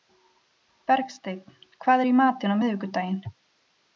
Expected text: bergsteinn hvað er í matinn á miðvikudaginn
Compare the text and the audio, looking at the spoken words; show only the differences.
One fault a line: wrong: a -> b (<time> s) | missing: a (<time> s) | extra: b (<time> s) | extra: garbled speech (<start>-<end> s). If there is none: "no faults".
no faults